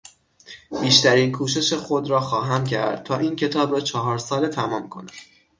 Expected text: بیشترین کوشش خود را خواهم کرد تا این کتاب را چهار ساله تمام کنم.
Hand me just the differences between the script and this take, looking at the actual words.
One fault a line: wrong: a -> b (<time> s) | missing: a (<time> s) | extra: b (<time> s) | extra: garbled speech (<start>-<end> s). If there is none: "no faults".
no faults